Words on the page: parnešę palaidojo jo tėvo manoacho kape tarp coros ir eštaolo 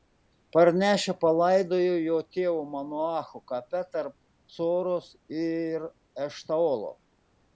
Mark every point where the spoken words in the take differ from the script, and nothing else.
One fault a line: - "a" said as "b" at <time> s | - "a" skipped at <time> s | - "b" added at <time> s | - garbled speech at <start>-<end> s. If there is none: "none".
none